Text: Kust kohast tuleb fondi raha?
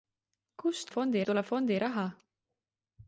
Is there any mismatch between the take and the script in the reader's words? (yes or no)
yes